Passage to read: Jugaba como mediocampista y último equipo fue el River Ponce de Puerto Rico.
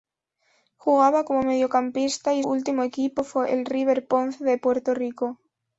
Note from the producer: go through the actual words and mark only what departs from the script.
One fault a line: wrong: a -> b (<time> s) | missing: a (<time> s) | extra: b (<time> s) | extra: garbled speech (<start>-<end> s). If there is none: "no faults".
no faults